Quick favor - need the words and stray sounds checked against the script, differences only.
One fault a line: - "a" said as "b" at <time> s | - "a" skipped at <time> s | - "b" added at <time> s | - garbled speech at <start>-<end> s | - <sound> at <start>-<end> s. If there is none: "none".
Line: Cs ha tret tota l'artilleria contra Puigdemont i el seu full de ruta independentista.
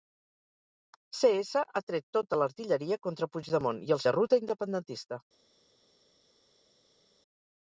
- "seu full" skipped at 4.0 s